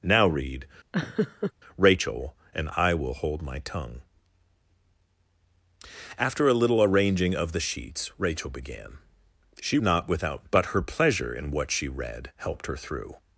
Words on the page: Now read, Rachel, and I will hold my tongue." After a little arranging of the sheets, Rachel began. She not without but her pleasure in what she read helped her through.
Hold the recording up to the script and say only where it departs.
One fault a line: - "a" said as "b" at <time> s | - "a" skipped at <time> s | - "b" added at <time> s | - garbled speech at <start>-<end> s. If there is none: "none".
none